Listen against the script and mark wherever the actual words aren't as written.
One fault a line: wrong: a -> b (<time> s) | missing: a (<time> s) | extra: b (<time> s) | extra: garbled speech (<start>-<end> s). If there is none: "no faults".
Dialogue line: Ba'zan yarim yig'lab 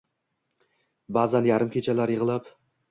extra: kechalar (1.8 s)